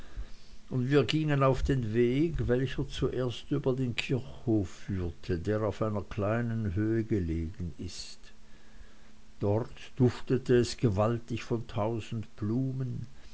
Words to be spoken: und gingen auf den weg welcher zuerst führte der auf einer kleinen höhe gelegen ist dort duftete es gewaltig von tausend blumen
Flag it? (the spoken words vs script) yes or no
yes